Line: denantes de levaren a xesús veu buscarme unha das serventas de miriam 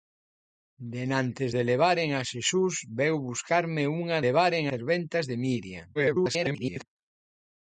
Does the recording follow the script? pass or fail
fail